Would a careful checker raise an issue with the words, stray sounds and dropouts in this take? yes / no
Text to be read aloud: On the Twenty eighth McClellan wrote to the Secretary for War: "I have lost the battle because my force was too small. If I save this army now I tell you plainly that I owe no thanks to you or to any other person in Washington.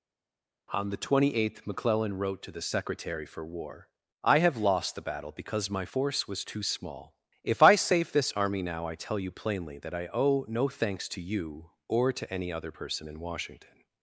no